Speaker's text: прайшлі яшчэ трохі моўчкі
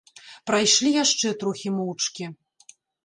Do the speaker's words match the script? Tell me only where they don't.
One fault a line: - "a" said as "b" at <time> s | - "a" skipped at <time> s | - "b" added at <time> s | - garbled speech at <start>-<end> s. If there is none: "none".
none